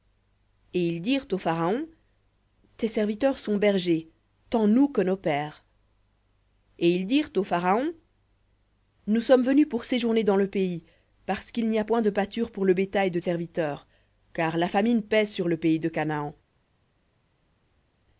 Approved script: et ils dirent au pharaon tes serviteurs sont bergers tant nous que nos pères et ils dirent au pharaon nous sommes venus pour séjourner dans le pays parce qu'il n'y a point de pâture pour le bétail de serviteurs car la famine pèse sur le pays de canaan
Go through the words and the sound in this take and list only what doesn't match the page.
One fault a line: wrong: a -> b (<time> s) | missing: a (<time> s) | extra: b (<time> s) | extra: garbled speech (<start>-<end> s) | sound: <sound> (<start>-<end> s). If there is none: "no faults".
no faults